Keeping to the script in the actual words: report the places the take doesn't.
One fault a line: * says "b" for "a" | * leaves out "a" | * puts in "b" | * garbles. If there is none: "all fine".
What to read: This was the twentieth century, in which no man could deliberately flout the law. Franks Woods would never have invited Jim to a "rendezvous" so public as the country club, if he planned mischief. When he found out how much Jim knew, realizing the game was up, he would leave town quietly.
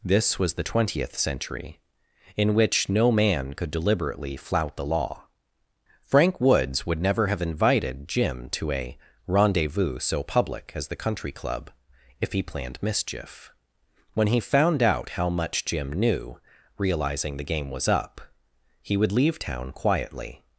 * says "Frank" for "Franks"